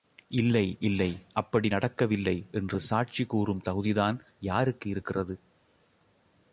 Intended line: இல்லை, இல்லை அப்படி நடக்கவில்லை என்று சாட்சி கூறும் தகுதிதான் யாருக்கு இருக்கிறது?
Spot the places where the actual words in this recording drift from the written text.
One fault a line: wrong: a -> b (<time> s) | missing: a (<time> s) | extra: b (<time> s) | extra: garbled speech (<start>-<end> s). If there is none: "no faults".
no faults